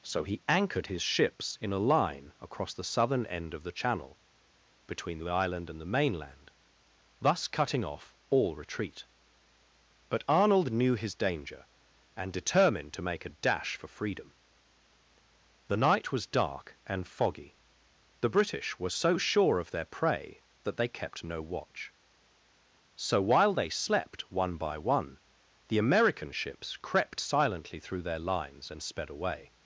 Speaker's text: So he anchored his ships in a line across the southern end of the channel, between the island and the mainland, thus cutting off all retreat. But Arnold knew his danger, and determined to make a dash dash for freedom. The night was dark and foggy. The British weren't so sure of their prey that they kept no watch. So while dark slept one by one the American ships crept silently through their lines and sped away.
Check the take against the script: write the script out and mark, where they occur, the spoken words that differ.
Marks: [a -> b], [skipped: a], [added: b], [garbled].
So he anchored his ships in a line across the southern end of the channel, between the island and the mainland, thus cutting off all retreat. But Arnold knew his danger, and determined to make a dash [skipped: dash] for freedom. The night was dark and foggy. The British [weren't -> were] so sure of their prey that they kept no watch. So while [dark -> they] slept one by one the American ships crept silently through their lines and sped away.